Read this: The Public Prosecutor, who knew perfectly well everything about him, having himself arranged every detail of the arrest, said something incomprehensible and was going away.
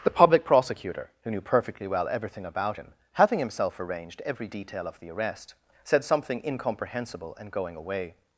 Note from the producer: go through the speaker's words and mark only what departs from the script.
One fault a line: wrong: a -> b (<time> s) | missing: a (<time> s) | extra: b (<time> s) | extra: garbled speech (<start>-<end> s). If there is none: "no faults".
missing: was (7.5 s)